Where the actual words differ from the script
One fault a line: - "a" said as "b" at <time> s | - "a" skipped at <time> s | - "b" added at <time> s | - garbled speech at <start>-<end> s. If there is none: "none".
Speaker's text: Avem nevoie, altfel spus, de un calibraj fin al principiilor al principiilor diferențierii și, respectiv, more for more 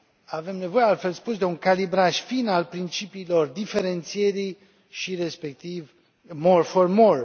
- "al principiilor" skipped at 3.5 s